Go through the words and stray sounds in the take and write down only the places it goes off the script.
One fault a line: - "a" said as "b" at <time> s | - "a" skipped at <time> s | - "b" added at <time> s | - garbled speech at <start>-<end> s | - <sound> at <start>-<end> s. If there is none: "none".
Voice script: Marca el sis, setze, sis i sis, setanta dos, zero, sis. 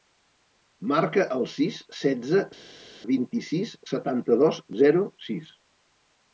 - "sis" said as "vint" at 3.1 s